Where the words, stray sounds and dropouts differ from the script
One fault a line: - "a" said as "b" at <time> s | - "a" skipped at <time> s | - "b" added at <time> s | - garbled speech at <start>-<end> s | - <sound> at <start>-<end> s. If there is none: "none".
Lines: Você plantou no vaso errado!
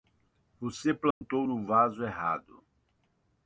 - dropout at 1.1-1.2 s